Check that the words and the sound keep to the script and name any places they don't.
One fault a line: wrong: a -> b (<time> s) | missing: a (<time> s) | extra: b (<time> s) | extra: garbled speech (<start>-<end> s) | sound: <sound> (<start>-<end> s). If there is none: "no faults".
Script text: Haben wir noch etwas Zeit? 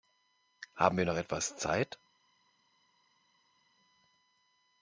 no faults